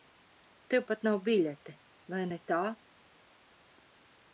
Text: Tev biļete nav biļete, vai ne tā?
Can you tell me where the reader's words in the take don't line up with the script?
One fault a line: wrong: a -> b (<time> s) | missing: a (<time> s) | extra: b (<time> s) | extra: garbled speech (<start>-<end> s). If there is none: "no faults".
wrong: biļete -> pat (0.9 s)